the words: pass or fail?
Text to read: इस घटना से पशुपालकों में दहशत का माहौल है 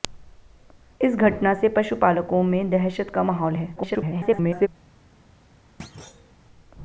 fail